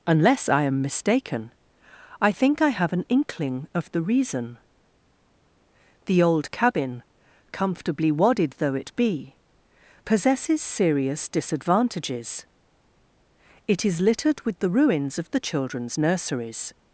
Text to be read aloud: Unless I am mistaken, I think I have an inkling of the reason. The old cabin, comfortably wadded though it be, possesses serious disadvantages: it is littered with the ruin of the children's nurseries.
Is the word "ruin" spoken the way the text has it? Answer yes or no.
no